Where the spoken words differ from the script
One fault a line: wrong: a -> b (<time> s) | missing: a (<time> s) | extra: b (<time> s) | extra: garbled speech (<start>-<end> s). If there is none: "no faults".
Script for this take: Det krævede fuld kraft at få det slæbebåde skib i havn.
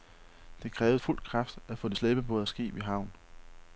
no faults